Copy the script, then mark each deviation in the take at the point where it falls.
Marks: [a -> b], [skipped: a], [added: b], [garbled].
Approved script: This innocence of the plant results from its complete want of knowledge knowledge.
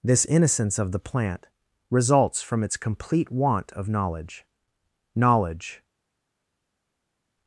This innocence of the plant results from its complete want of knowledge knowledge.